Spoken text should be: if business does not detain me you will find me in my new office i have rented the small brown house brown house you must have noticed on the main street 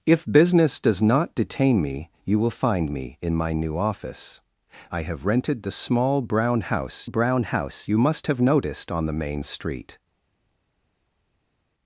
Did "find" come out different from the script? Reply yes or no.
no